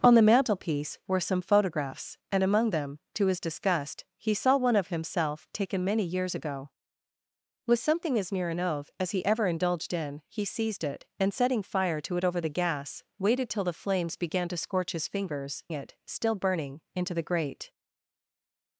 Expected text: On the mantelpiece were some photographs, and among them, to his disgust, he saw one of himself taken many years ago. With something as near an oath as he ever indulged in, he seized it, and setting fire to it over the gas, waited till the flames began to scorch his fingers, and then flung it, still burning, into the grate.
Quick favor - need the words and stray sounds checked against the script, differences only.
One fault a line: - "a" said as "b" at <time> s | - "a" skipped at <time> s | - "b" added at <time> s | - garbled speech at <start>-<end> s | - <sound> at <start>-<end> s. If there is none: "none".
- "and then flung" skipped at 15.6 s